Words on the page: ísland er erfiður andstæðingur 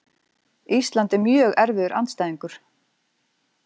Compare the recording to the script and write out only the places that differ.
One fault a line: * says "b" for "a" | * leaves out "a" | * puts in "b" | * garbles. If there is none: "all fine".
* puts in "mjög"